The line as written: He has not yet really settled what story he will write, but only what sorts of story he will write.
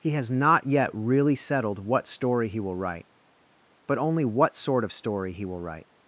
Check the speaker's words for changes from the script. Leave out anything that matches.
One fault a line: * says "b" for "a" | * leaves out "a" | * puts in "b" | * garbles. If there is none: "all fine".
* says "sort" for "sorts"